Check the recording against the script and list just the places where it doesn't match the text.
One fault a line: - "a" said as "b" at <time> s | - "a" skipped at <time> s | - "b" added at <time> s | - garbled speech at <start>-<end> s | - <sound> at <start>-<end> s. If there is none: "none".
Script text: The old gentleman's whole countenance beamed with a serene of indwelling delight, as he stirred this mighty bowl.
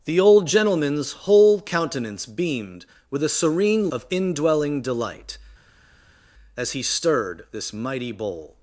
none